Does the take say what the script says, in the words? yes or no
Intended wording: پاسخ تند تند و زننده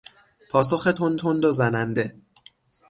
yes